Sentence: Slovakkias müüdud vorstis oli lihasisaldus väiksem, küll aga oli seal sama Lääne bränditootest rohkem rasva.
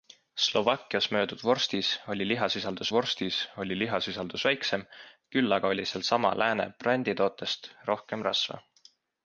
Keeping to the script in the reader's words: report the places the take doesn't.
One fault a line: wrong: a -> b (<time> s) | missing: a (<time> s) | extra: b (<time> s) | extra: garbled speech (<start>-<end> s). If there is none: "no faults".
extra: vorstis oli lihasisaldus (3.0 s)